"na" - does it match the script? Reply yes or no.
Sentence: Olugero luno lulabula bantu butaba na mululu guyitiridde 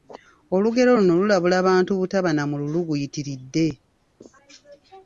yes